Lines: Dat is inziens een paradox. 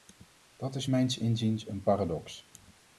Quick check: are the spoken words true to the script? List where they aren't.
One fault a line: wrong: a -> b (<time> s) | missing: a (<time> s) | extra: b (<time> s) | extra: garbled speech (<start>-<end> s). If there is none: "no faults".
extra: mijns (0.8 s)